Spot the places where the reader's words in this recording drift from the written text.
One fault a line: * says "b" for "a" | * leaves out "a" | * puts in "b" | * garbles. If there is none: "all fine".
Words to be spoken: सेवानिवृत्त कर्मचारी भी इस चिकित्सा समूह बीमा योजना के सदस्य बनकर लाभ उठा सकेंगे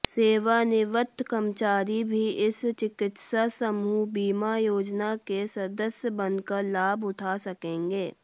all fine